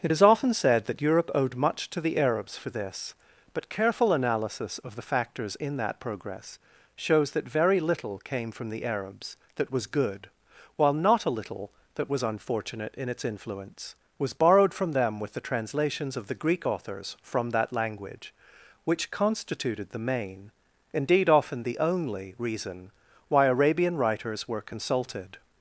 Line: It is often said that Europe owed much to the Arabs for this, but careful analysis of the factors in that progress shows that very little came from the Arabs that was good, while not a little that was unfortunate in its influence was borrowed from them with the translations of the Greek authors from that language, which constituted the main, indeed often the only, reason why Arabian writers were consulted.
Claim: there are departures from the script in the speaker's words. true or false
false